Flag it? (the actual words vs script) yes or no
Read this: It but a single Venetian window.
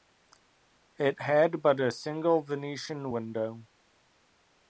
yes